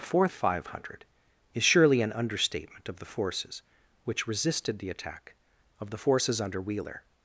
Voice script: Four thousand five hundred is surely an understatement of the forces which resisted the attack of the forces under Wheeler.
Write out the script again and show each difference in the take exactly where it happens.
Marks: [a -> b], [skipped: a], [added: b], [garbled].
Four [skipped: thousand] five hundred is surely an understatement of the forces which resisted the attack of the forces under Wheeler.